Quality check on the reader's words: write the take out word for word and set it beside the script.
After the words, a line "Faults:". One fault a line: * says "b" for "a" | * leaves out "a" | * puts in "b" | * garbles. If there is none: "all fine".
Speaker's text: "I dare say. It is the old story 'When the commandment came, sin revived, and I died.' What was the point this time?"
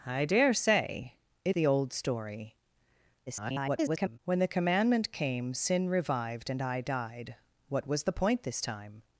"I dare say. It the old story [garbled] 'When the commandment came, sin revived, and I died.' What was the point this time?"
Faults:
* leaves out "is"
* garbles